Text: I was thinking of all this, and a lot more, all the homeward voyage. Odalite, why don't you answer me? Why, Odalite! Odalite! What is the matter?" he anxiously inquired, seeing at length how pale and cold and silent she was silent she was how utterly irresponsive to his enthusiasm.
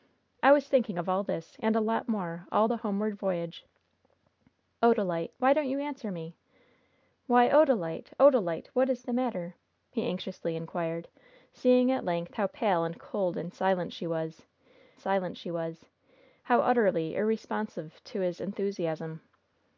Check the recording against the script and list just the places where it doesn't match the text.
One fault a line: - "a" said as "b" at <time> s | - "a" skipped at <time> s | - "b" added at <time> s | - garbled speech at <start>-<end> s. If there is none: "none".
none